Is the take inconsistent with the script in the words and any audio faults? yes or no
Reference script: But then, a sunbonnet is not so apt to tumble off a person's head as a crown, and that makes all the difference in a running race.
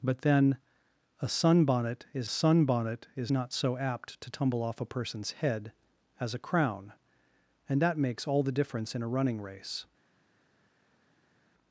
yes